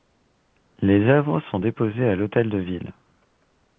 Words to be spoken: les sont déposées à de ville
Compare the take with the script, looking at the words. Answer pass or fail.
fail